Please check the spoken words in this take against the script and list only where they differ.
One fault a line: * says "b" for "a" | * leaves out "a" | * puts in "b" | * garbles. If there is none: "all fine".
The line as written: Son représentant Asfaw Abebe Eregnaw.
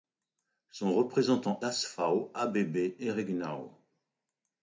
all fine